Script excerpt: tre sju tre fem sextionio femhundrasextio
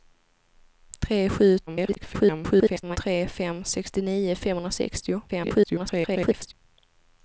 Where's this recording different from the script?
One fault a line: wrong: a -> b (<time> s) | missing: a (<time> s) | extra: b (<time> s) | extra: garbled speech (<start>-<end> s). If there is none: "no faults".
extra: garbled speech (1.7-3.0 s)
extra: garbled speech (5.3-6.5 s)